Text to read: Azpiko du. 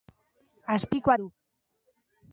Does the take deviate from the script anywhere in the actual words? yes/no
no